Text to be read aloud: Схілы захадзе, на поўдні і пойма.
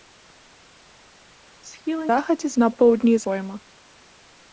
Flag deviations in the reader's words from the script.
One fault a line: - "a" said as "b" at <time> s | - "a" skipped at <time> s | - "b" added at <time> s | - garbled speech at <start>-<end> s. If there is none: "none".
none